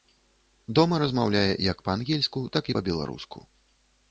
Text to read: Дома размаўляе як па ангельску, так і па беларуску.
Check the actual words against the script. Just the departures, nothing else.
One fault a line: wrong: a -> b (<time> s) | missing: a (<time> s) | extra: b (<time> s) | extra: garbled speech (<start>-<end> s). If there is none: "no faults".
no faults